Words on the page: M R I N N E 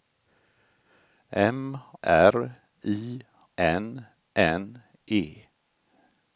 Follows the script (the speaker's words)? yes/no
yes